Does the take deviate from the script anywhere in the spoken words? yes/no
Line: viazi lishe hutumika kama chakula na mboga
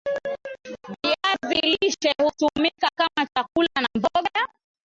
no